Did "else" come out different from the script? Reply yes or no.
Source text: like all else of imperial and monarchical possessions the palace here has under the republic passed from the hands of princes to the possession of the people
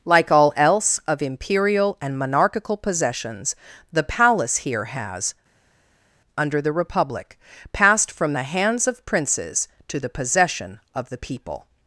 no